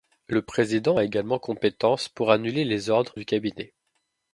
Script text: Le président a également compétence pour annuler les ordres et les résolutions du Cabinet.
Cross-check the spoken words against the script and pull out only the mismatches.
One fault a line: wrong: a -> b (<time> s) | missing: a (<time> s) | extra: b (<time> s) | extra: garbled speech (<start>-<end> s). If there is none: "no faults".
missing: et les résolutions (3.1 s)